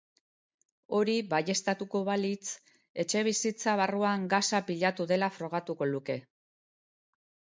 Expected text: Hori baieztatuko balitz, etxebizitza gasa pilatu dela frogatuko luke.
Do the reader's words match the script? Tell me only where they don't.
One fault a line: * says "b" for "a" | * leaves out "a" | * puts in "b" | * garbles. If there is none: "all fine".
* puts in "barruan"